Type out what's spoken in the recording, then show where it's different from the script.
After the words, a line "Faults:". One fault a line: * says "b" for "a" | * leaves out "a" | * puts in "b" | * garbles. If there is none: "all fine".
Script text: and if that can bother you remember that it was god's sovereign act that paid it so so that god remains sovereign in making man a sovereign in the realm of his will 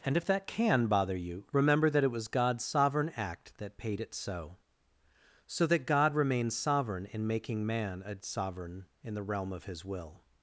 and if that can bother you remember that it was god's sovereign act that paid it so so that god remains sovereign in making man a sovereign in the realm of his will
Faults:
all fine